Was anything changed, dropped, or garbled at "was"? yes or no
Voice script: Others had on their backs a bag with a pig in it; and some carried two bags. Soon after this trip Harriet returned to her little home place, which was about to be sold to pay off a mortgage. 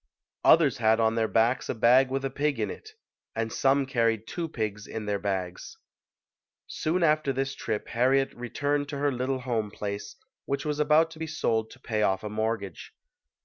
no